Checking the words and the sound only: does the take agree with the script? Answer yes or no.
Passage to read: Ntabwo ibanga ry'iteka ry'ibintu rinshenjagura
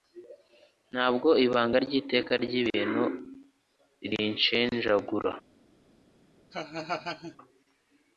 no